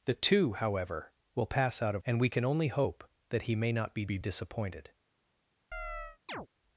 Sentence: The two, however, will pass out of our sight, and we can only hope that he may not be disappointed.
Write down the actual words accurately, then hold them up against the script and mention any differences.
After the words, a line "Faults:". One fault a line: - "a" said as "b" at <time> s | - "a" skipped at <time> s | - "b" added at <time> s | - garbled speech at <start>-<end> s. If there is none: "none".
The two, however, will pass out of and we can only hope that he may not be be disappointed.
Faults:
- "our sight" skipped at 2.0 s
- "be" added at 4.1 s